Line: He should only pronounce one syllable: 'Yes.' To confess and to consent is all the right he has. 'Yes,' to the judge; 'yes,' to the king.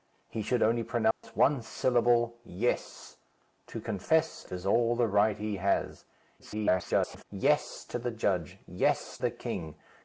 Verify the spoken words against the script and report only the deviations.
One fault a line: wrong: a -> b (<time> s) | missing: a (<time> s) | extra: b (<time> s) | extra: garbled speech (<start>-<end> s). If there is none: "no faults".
missing: and to consent (4.5 s)
extra: garbled speech (6.4-7.2 s)
missing: to (9.2 s)